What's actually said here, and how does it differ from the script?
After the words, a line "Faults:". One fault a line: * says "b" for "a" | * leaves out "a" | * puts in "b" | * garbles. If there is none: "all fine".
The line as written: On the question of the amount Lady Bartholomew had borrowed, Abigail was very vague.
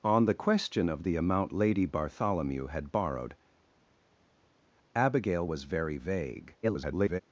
On the question of the amount Lady Bartholomew had borrowed, Abigail was very vague. [garbled]
Faults:
* garbles